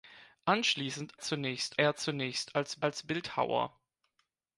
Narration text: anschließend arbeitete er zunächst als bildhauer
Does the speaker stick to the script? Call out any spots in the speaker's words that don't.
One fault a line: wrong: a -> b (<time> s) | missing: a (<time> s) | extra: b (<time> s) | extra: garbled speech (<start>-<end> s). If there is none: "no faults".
wrong: arbeitete -> zunächst (1.2 s)
extra: als (2.8 s)